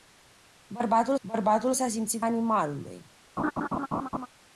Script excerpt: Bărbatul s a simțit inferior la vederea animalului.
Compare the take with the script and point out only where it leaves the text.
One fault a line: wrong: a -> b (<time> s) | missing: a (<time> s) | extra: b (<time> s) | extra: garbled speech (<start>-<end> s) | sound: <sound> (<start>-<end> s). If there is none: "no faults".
extra: bărbatul (1.2 s)
missing: inferior la vederea (2.2 s)
sound: laugh (3.4-4.3 s)